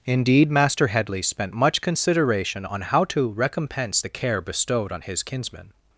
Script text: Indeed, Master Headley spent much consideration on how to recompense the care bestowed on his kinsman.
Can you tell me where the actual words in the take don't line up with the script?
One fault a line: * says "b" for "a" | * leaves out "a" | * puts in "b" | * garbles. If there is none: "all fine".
all fine